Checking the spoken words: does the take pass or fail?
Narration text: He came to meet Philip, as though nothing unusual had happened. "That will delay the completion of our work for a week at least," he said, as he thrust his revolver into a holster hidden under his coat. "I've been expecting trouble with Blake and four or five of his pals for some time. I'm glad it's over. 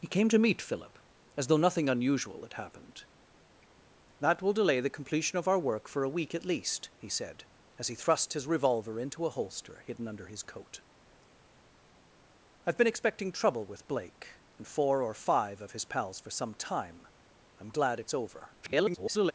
fail